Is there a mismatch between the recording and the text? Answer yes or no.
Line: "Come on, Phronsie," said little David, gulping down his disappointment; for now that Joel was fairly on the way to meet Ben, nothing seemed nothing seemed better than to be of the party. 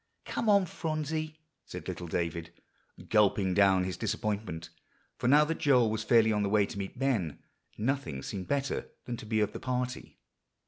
yes